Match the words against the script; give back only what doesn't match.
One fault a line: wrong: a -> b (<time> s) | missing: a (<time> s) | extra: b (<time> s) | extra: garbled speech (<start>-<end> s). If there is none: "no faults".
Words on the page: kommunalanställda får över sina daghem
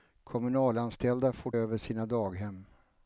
no faults